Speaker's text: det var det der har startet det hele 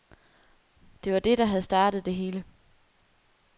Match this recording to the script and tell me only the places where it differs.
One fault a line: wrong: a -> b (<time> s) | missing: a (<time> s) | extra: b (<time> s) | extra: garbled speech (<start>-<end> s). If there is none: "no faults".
wrong: har -> havde (1.4 s)